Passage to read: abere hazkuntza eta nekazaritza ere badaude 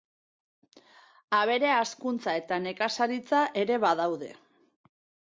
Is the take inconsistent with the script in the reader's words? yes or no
no